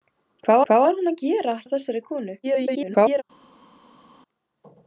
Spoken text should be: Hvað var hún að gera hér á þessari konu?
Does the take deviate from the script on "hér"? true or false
true